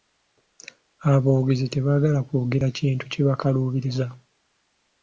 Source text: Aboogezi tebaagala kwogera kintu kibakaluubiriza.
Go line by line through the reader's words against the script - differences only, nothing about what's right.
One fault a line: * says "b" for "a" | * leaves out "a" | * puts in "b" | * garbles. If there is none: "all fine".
all fine